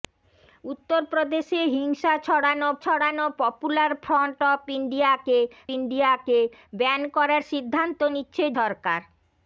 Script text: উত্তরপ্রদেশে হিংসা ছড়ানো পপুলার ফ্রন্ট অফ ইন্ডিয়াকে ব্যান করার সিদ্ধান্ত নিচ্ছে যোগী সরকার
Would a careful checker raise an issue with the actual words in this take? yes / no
yes